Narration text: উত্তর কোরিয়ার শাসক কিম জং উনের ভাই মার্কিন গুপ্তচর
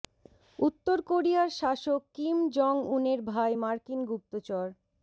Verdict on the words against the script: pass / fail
pass